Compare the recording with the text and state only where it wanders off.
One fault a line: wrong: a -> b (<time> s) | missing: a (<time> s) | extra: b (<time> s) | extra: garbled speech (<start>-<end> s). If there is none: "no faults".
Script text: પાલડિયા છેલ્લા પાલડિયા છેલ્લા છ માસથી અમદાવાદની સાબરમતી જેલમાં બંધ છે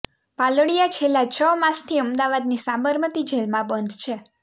missing: પાલડિયા છેલ્લા (1.3 s)